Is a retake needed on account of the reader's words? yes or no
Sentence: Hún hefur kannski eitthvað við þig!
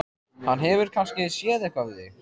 yes